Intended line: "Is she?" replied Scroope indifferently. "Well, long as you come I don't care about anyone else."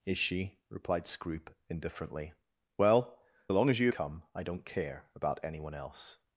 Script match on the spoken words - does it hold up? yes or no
yes